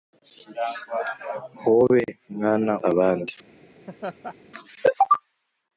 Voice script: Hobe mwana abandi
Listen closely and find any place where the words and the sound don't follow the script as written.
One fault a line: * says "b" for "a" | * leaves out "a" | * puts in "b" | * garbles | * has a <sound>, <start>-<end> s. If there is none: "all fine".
* has a laugh, 3.9-4.4 s